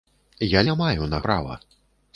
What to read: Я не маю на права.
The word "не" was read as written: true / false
true